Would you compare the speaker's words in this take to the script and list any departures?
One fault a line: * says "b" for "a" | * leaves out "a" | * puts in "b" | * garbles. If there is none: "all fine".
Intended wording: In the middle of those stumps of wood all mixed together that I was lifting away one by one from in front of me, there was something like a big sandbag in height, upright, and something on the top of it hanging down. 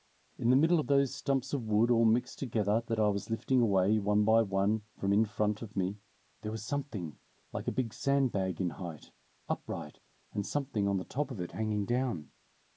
all fine